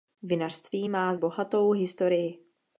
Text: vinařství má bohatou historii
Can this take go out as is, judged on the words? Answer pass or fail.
pass